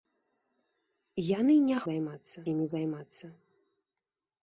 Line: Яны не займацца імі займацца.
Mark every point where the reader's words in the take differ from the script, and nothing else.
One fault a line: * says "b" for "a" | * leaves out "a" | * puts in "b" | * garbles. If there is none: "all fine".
all fine